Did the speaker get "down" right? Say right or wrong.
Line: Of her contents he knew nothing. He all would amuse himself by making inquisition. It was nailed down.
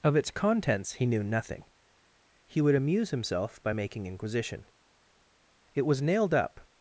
wrong